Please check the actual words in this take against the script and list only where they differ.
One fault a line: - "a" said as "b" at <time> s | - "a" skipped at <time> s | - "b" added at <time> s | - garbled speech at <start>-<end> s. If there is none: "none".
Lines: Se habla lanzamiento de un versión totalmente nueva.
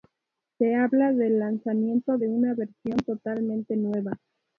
- "del" added at 1.1 s
- "un" said as "una" at 2.3 s